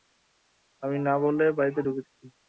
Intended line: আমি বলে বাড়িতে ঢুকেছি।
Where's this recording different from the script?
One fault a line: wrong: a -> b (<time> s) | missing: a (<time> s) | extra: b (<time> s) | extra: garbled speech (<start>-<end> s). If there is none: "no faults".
extra: না (1.0 s)